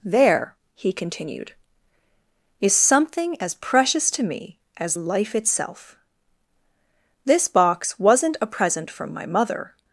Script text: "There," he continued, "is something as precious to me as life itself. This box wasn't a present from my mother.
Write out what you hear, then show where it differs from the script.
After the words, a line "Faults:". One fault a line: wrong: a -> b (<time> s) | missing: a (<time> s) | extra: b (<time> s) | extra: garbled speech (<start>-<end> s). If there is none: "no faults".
"There," he continued, "is something as precious to me as life itself. This box wasn't a present from my mother.
Faults:
no faults